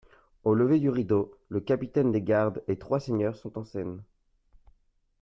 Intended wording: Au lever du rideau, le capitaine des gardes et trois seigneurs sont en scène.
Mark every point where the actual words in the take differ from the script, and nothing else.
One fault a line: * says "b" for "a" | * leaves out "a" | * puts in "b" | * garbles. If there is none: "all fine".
all fine